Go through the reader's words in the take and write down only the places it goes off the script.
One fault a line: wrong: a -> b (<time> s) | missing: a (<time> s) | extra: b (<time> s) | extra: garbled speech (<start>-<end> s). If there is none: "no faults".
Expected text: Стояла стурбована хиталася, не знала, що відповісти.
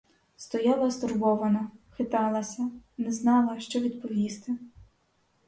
no faults